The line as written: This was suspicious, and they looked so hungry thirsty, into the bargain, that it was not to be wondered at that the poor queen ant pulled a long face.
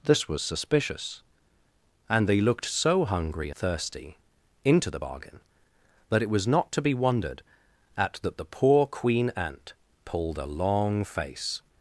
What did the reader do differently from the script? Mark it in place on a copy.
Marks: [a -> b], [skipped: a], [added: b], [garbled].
This was suspicious, and they looked so hungry thirsty, into the bargain, that it was not to be wondered at that the poor queen ant pulled a long face.